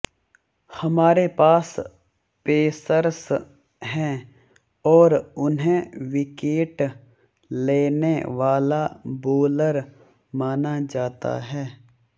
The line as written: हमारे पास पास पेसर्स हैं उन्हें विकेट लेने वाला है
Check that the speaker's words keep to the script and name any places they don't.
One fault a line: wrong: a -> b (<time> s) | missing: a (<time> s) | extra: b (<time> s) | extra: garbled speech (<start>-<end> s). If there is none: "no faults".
missing: पास (1.7 s)
extra: और (4.9 s)
extra: बोलर माना जाता (9.3 s)